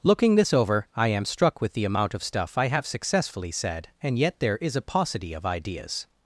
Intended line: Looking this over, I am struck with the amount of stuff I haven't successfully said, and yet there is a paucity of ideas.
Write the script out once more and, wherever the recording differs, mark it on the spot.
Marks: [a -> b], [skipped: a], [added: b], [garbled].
Looking this over, I am struck with the amount of stuff I [haven't -> have] successfully said, and yet there is a paucity of ideas.